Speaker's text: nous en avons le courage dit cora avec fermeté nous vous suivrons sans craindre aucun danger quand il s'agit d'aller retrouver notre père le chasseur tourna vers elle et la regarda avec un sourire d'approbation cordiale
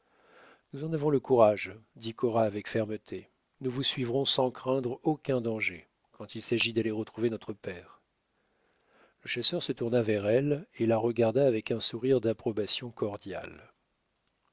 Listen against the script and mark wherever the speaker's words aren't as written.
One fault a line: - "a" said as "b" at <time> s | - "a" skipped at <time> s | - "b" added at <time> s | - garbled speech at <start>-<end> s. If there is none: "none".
- "se" added at 9.6 s